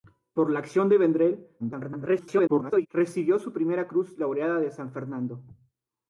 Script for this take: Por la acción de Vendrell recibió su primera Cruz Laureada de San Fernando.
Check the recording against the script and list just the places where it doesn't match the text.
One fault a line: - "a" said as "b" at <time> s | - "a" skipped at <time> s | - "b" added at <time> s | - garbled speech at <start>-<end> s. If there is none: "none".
- garbled speech at 1.6-2.9 s